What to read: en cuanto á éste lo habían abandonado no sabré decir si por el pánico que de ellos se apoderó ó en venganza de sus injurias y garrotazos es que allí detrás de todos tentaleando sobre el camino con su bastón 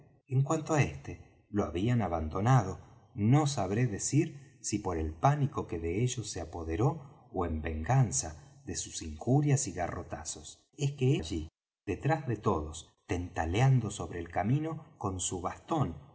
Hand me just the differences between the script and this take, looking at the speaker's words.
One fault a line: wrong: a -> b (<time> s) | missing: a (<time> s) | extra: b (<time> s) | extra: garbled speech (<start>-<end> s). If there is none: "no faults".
no faults